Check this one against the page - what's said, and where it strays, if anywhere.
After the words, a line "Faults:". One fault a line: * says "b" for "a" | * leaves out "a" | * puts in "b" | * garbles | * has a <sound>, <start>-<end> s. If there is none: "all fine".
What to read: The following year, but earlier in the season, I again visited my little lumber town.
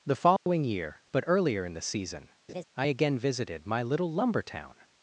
The following year, but earlier in the season, I again visited my little lumber town.
Faults:
* has a dropout, 0.4-0.5 s
* has a laugh, 2.5-2.6 s